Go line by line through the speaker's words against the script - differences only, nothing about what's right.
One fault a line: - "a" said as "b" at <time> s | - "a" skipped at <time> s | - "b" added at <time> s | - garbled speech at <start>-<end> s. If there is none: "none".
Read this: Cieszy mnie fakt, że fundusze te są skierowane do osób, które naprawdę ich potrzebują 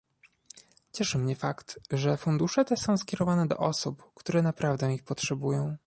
none